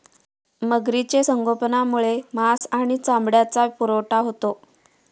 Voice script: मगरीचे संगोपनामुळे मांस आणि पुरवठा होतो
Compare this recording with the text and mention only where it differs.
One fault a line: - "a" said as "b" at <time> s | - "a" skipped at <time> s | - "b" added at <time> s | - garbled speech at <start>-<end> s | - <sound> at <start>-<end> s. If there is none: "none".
- dropout at 2.6-2.6 s
- "चामड्याचा" added at 3.0 s